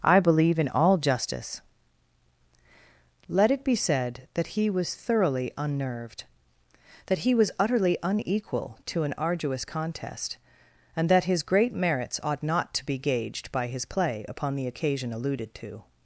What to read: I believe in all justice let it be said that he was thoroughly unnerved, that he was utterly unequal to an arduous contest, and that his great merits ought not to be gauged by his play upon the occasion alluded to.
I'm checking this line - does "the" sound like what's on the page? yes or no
yes